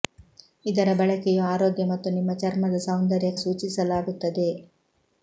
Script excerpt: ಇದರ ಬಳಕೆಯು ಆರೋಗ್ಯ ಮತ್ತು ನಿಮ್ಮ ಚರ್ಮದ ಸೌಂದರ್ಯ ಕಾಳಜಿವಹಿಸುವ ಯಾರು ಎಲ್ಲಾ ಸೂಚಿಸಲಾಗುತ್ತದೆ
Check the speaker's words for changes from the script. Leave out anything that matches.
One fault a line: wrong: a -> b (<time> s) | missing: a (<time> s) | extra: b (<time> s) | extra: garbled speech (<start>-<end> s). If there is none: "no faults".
missing: ಕಾಳಜಿವಹಿಸುವ ಯಾರು ಎಲ್ಲಾ (3.3 s)